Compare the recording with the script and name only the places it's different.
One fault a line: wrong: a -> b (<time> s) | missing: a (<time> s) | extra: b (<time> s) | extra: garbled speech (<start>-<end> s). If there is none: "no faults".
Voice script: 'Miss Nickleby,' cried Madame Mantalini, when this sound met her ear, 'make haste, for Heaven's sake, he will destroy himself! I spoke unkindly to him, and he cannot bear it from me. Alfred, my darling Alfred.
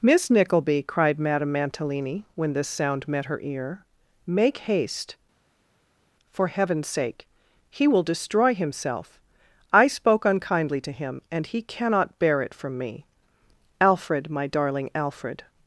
no faults